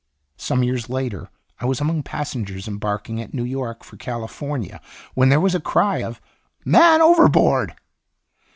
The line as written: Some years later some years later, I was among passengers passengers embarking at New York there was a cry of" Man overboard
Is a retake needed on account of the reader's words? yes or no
yes